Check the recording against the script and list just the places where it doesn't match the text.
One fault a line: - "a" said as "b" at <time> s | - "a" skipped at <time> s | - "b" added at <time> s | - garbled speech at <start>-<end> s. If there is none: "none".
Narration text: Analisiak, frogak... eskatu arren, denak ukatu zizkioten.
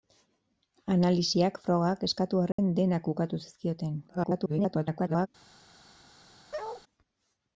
- garbled speech at 4.1-5.3 s